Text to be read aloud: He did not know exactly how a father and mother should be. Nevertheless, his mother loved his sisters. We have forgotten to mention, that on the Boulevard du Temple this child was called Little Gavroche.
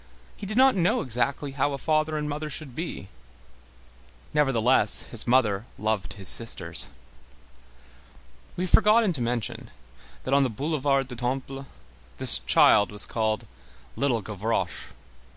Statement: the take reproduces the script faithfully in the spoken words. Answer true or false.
true